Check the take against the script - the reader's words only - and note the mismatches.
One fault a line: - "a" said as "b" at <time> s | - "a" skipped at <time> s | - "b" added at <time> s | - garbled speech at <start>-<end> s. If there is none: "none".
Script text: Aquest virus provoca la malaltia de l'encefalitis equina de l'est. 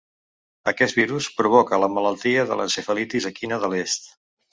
none